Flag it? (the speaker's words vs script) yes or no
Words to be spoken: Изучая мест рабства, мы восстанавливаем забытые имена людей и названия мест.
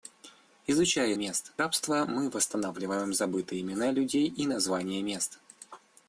no